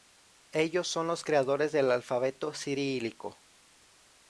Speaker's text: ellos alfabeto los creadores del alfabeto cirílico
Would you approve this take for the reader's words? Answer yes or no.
no